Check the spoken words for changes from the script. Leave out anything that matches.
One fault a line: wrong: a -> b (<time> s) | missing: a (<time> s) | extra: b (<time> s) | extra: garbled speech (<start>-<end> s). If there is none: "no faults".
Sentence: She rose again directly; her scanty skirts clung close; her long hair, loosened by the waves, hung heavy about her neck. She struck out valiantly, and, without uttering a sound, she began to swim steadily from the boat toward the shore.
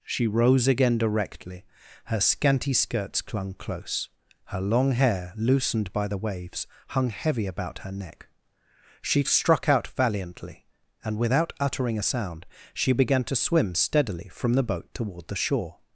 no faults